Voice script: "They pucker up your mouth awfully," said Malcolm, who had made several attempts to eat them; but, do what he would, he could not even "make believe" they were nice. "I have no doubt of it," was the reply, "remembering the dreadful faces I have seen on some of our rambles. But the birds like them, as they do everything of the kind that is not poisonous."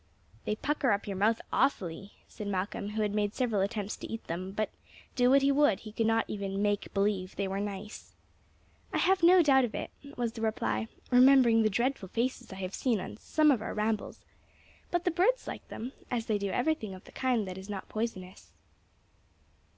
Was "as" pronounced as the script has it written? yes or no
yes